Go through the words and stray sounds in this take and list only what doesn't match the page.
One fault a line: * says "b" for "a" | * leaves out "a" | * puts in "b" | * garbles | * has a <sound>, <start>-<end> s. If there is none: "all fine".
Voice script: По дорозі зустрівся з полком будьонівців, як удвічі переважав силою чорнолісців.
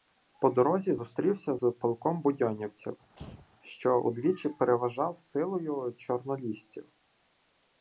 * has a throat clearing, 3.1-3.5 s
* says "що" for "як"